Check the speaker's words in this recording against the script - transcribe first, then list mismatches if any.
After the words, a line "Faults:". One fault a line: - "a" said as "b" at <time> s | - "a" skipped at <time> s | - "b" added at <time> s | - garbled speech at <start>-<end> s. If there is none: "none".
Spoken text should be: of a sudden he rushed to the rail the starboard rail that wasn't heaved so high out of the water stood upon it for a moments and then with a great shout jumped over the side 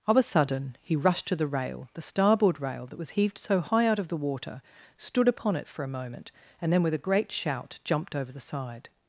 of a sudden he rushed to the rail the starboard rail that was heaved so high out of the water stood upon it for a moment and then with a great shout jumped over the side
Faults:
- "wasn't" said as "was" at 3.0 s
- "moments" said as "moment" at 5.9 s